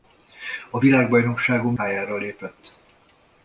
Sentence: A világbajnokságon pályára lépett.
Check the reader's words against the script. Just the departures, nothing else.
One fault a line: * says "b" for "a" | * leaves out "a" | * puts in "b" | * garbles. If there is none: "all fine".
all fine